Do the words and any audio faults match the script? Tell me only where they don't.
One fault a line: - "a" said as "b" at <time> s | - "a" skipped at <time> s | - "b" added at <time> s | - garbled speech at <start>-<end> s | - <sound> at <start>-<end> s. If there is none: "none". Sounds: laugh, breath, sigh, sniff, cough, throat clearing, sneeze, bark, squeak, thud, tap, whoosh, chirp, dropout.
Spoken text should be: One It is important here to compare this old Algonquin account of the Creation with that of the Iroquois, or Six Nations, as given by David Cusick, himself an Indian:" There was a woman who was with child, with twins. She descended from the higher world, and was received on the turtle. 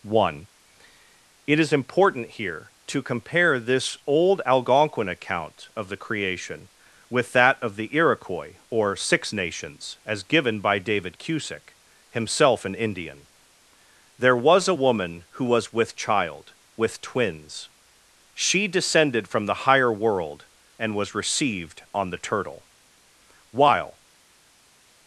- "While" added at 23.5 s